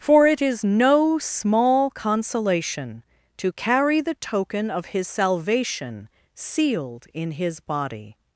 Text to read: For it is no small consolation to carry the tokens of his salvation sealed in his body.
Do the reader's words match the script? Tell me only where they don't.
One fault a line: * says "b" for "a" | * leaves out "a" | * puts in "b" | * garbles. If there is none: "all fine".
* says "token" for "tokens"